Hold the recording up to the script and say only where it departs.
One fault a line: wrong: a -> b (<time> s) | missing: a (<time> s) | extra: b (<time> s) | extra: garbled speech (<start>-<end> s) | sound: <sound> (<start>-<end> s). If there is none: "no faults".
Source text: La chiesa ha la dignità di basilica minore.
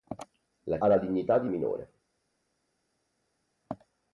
missing: chiesa (0.8 s)
missing: basilica (1.5 s)